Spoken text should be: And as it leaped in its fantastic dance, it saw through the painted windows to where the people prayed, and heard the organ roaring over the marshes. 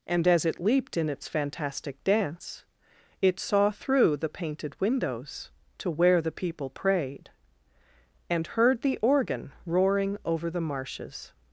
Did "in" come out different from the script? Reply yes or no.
no